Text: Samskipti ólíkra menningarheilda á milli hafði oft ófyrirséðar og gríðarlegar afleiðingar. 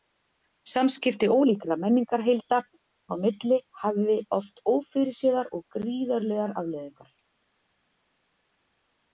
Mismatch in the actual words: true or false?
false